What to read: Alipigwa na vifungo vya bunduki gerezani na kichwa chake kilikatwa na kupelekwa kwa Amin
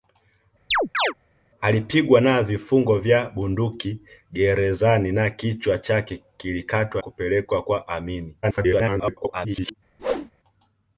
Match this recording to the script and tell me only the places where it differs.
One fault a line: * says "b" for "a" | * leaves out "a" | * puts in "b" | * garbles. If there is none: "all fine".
* leaves out "na"
* garbles